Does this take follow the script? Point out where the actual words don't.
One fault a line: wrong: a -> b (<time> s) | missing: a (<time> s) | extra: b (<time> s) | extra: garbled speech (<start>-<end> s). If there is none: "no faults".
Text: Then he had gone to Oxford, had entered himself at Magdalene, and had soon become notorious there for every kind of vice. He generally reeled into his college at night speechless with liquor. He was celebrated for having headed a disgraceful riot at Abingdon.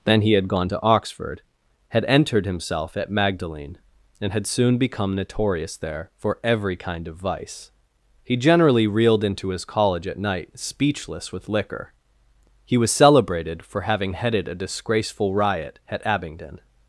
no faults